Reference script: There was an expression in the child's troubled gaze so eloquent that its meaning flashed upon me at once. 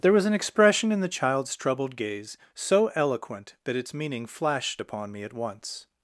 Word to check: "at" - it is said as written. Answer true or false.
true